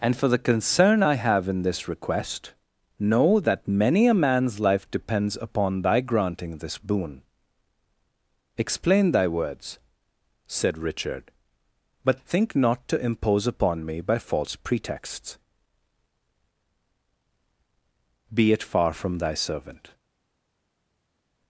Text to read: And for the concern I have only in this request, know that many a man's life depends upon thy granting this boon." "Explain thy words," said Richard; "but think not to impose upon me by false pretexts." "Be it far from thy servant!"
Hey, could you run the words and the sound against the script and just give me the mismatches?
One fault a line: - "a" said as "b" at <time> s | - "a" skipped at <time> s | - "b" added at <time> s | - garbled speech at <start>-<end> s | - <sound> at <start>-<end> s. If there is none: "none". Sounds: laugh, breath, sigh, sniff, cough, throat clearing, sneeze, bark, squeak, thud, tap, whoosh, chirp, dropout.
- "only" skipped at 1.5 s